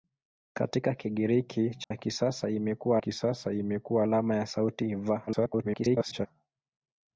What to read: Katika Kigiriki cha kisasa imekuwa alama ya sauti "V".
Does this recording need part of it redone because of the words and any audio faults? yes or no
yes